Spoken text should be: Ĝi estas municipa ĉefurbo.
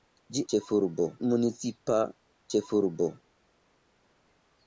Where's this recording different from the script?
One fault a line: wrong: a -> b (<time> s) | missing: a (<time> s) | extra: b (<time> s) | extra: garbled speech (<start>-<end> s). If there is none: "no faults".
wrong: estas -> ĉefurbo (0.5 s)